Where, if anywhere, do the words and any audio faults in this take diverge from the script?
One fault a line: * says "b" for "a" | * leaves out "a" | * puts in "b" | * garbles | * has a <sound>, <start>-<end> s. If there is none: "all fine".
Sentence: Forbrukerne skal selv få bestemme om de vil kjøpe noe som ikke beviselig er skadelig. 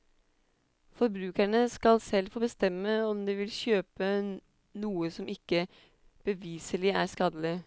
all fine